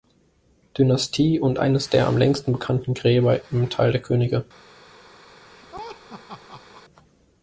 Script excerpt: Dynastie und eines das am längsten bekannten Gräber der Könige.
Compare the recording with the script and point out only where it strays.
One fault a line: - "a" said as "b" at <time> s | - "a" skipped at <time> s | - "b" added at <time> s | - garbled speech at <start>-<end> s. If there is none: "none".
- "das" said as "der" at 1.9 s
- "im Tal" added at 3.5 s